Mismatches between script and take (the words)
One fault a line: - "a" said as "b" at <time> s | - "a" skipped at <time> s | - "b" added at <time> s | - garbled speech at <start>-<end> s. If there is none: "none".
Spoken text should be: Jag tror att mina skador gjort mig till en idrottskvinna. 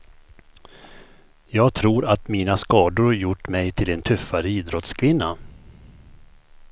- "tuffare" added at 4.0 s